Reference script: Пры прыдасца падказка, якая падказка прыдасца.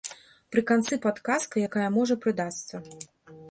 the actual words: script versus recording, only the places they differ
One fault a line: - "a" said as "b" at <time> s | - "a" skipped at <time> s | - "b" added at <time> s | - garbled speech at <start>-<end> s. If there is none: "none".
- "прыдасца" said as "канцы" at 0.7 s
- "падказка" said as "можа" at 2.0 s